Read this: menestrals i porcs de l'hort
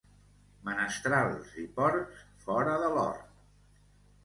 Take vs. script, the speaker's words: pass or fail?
fail